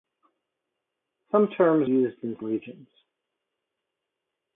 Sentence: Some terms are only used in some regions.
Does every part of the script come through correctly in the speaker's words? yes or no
no